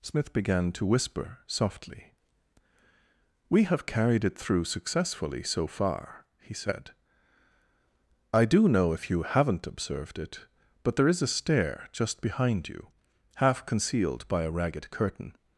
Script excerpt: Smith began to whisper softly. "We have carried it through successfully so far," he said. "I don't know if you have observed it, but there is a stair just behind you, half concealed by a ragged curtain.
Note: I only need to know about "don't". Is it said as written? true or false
false